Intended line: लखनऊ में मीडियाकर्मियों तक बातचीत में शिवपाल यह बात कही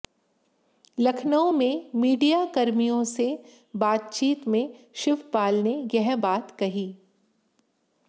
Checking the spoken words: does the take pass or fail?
fail